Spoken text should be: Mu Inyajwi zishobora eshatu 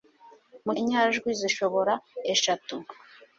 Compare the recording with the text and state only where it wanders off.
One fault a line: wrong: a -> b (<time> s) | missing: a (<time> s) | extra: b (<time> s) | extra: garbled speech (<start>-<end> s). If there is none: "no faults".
no faults